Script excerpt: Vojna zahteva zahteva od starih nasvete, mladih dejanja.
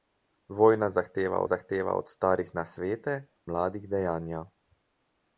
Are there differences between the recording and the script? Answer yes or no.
no